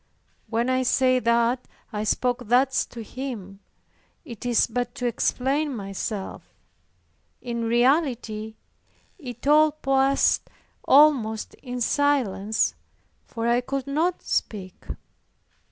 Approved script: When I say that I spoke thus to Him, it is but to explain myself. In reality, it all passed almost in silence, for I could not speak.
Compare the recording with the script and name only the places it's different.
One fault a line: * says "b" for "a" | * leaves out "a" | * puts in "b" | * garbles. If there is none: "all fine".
all fine